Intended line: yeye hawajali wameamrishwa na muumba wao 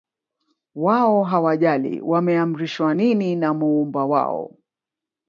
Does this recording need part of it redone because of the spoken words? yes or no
yes